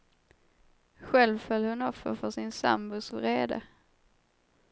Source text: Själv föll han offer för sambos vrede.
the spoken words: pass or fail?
fail